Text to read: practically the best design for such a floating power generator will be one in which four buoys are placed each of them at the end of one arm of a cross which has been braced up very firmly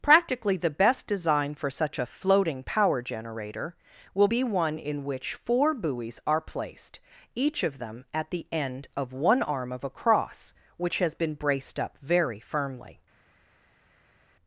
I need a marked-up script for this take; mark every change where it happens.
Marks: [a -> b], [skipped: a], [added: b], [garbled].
practically the best design for such a floating power generator will be one in which four buoys are placed each of them at the end of one arm of a cross which has been braced up very firmly